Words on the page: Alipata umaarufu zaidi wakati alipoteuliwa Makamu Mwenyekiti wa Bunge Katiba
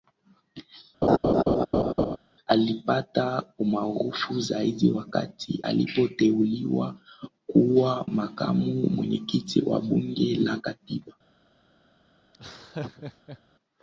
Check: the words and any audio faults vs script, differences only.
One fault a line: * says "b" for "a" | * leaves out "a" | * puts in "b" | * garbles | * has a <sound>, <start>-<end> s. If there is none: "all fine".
* has a laugh, 1.0-2.2 s
* puts in "kuwa"
* puts in "la"
* has a laugh, 12.3-13.4 s